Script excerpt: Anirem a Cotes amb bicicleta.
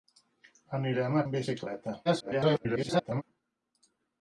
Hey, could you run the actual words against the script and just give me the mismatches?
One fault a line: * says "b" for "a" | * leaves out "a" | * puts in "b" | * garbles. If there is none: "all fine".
* leaves out "Cotes"
* garbles